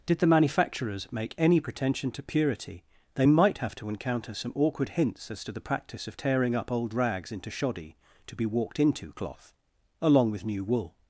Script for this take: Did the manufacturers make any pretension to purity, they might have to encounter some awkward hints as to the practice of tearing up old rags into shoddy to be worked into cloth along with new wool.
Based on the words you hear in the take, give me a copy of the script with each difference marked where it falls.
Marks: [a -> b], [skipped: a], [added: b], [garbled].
Did the manufacturers make any pretension to purity, they might have to encounter some awkward hints as to the practice of tearing up old rags into shoddy to be [worked -> walked] into cloth along with new wool.